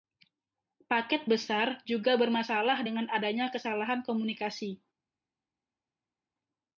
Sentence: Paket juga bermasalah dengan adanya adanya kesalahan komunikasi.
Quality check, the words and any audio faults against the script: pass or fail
fail